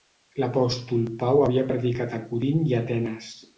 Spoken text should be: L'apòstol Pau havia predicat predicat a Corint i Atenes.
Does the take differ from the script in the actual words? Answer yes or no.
yes